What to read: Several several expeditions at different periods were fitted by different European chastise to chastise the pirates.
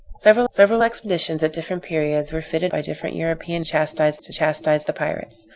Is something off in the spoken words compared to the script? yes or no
no